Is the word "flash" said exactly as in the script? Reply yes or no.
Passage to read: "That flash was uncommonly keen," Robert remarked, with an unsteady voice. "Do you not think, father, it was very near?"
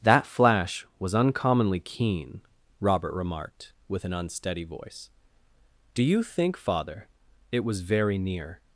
yes